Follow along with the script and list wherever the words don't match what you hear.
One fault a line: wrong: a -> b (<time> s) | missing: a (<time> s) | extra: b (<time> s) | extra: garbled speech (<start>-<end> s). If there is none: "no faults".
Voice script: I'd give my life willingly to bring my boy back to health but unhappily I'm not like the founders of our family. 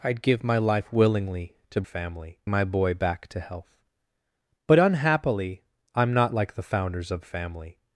wrong: bring -> family (1.8 s)
missing: our (7.3 s)